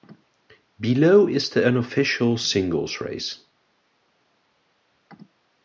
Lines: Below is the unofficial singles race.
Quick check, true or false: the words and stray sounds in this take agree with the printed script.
true